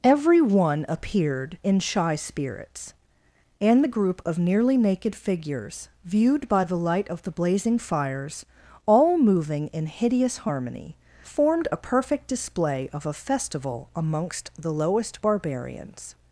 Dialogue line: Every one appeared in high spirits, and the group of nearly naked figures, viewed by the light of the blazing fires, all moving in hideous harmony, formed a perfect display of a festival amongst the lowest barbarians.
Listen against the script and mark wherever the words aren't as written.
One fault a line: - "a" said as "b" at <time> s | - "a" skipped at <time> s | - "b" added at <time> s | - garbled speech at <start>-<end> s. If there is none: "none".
- "high" said as "shy" at 1.8 s